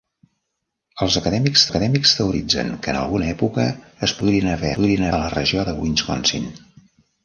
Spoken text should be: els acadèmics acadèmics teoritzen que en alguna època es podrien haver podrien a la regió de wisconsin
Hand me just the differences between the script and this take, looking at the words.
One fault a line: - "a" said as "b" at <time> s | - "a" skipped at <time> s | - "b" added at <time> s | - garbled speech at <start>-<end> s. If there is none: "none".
none